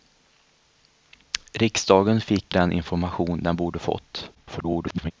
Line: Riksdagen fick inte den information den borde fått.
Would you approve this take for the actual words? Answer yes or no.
no